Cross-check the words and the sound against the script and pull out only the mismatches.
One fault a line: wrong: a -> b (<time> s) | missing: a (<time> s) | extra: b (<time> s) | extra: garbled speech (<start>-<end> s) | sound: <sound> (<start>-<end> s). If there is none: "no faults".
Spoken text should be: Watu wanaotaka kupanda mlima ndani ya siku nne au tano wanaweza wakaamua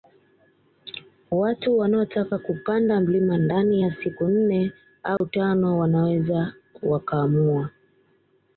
sound: dropout (5.2-5.2 s)